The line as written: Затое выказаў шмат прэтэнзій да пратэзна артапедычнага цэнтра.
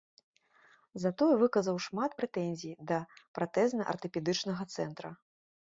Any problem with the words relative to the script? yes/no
no